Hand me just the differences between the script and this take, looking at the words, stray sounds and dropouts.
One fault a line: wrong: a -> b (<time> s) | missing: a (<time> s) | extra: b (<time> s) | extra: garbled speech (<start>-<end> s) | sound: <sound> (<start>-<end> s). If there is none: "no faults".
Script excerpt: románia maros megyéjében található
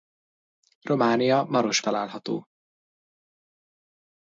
missing: megyéjében (1.8 s)